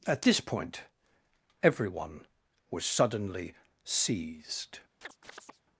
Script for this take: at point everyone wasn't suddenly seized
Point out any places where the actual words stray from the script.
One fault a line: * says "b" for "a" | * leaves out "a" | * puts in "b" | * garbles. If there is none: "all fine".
* puts in "this"
* says "was" for "wasn't"